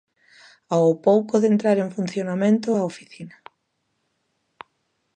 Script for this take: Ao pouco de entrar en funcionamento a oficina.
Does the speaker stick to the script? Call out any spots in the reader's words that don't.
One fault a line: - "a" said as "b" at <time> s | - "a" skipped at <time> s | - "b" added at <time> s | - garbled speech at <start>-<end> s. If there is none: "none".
none